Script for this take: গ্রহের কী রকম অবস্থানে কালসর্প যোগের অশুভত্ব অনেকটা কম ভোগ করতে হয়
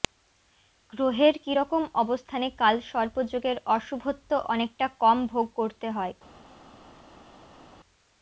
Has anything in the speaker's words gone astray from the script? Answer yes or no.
no